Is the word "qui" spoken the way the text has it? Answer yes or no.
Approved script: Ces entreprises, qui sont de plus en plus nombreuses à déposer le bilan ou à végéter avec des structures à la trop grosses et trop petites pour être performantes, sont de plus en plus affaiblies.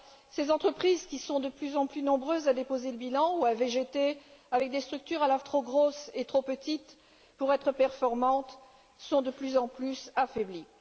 yes